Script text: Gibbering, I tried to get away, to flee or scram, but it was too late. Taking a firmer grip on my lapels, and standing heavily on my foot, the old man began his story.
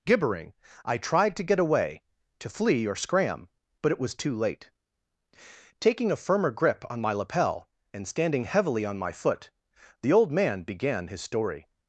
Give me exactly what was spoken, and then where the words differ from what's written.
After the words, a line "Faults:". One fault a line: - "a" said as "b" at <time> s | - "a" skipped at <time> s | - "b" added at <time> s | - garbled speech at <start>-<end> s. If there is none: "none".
Gibbering, I tried to get away, to flee or scram, but it was too late. Taking a firmer grip on my lapel, and standing heavily on my foot, the old man began his story.
Faults:
- "lapels" said as "lapel" at 7.1 s